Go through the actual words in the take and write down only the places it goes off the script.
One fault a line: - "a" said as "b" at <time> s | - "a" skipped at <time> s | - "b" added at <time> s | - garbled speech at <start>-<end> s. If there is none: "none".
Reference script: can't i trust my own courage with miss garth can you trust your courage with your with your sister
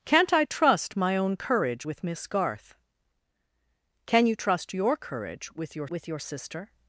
none